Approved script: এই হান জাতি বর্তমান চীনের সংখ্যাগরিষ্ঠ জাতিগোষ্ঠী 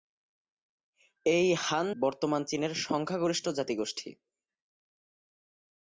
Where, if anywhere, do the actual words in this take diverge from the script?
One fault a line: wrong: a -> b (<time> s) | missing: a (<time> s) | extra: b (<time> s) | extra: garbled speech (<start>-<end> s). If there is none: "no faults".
missing: জাতি (1.9 s)